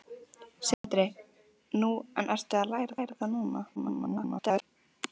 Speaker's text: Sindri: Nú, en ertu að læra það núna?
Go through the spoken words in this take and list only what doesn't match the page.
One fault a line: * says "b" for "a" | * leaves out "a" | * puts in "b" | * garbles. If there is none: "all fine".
* puts in "læra"
* garbles